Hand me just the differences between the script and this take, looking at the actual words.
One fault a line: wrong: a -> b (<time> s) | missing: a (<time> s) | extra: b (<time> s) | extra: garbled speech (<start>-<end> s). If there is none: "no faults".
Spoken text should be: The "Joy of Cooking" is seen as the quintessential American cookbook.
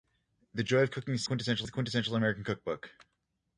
wrong: seen -> quintessential (1.2 s)